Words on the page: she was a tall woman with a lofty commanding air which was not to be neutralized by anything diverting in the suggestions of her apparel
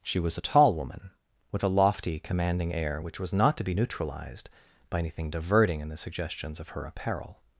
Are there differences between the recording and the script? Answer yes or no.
no